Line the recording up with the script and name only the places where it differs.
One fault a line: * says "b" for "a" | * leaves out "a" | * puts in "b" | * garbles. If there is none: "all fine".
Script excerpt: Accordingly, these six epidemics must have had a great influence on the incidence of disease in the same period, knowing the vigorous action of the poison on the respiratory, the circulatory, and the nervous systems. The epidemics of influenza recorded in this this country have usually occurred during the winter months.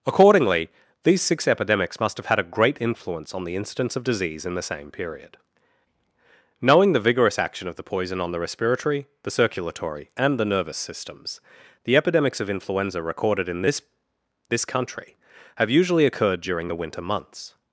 all fine